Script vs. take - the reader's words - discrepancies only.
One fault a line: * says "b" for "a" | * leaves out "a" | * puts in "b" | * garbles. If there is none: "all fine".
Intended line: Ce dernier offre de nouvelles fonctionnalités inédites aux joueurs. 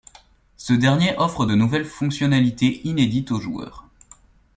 all fine